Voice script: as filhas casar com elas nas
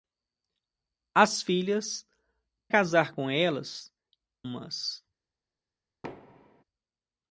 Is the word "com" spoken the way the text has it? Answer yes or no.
yes